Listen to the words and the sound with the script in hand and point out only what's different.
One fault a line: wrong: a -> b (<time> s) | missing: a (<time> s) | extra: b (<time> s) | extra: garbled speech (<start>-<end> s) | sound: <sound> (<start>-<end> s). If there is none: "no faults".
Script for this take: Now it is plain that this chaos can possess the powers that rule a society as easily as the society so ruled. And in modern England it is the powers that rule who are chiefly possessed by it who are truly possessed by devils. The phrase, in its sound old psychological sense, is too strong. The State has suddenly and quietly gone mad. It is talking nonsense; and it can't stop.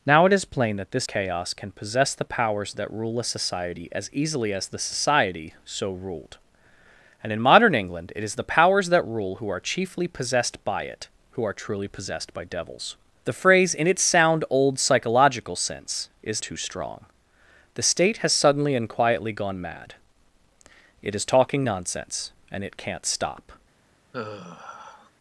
sound: sigh (24.1-25.1 s)